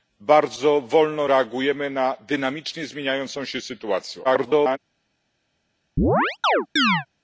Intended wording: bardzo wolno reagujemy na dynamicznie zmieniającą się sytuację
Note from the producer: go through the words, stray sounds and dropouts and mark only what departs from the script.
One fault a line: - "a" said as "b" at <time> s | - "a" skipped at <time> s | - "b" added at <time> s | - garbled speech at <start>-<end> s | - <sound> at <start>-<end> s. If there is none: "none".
- garbled speech at 4.2-4.8 s
- chirp at 6.0-7.1 s